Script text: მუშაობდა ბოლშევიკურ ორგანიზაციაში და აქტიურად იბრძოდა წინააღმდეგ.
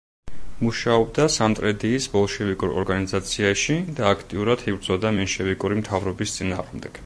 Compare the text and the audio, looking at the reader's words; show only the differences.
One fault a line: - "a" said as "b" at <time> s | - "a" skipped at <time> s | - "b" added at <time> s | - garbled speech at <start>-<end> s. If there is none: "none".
- "სამტრედიის" added at 1.3 s
- "მენშევიკური მთავრობის" added at 5.2 s